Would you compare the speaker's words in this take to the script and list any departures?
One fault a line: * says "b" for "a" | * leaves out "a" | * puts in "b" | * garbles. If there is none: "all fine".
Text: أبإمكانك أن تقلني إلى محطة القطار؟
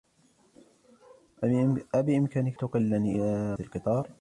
* leaves out "أن"
* leaves out "محطة"